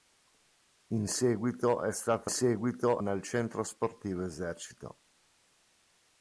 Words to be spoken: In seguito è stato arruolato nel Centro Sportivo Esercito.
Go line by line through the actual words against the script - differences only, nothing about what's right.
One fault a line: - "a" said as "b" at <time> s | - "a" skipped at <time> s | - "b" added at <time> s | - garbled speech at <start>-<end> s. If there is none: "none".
- "arruolato" said as "seguito" at 2.3 s